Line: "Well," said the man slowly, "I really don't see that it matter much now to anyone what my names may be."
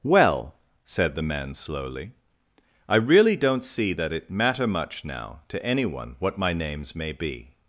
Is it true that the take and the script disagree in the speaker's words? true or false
false